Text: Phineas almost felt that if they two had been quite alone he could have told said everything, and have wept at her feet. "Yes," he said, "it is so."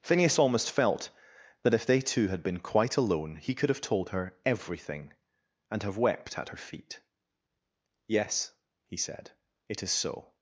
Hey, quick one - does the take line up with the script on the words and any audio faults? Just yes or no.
no